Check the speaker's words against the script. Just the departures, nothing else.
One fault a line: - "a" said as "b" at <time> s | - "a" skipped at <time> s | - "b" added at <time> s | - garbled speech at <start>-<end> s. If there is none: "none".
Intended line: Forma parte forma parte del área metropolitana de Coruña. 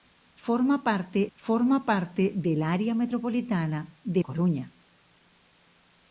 none